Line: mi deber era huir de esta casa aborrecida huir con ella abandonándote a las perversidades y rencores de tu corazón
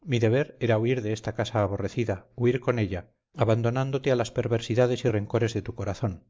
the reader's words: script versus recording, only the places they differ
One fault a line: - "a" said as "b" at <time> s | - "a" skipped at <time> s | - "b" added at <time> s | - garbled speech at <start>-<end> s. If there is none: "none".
none